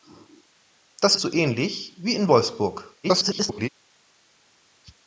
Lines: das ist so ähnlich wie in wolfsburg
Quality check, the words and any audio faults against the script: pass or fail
fail